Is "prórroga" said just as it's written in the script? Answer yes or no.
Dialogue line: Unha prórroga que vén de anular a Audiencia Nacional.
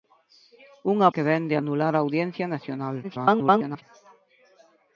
no